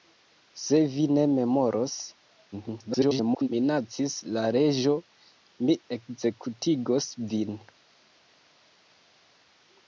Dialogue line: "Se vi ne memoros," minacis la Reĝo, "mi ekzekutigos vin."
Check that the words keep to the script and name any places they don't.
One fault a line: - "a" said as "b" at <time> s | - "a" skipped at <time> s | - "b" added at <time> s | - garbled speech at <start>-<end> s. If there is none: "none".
- garbled speech at 2.5-3.5 s